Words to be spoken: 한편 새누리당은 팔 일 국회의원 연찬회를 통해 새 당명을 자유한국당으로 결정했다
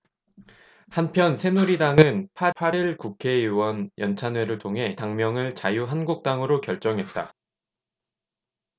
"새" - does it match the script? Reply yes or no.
no